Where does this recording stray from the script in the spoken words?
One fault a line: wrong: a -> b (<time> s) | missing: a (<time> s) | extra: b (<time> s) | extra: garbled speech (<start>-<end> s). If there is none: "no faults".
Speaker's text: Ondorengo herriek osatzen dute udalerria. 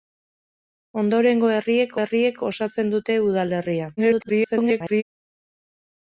extra: herriek (2.0 s)
extra: garbled speech (4.0-5.0 s)